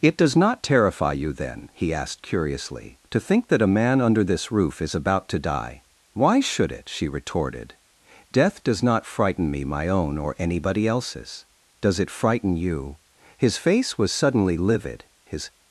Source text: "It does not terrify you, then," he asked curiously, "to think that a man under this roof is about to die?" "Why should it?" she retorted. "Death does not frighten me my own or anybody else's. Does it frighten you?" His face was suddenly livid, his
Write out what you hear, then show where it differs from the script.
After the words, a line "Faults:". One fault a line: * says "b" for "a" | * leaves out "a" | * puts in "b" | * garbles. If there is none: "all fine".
"It does not terrify you, then," he asked curiously, "to think that a man under this roof is about to die?" "Why should it?" she retorted. "Death does not frighten me my own or anybody else's. Does it frighten you?" His face was suddenly livid, his
Faults:
all fine